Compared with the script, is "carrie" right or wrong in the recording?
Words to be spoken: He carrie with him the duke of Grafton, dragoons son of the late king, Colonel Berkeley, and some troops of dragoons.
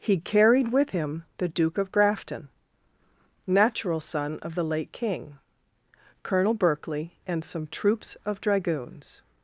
wrong